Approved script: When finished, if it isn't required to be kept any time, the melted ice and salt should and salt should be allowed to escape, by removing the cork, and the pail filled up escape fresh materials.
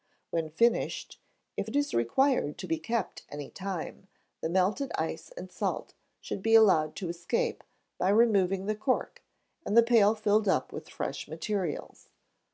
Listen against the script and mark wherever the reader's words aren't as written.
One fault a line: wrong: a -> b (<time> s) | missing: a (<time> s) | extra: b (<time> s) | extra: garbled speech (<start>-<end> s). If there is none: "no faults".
wrong: isn't -> is (1.7 s)
missing: and salt should (6.4 s)
wrong: escape -> with (10.7 s)